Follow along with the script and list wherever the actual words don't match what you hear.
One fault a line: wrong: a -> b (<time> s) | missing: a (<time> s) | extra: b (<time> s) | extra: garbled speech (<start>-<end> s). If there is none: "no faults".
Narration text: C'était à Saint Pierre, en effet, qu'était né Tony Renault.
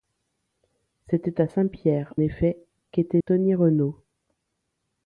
missing: en (2.1 s)
missing: né (3.2 s)